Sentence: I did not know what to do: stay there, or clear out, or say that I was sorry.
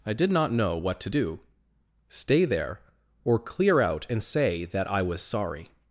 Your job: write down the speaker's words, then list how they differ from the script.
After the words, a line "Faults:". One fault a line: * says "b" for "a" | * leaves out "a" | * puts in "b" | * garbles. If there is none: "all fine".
I did not know what to do: stay there, or clear out, and say that I was sorry.
Faults:
* says "and" for "or"